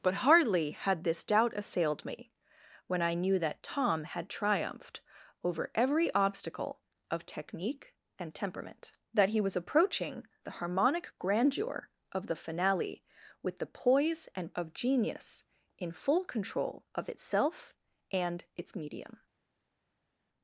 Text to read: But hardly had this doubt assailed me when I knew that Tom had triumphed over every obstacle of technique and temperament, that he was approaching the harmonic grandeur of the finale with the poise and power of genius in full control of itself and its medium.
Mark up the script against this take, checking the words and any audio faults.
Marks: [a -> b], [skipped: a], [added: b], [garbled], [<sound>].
But hardly had this doubt assailed me when I knew that Tom had triumphed over every obstacle of technique and temperament, that he was approaching the harmonic grandeur of the finale with the poise and [skipped: power] of genius in full control of itself and its medium.